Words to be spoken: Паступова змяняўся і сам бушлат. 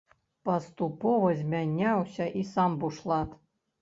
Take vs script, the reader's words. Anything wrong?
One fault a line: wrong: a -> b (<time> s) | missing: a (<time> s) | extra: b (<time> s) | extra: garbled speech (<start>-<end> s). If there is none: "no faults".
no faults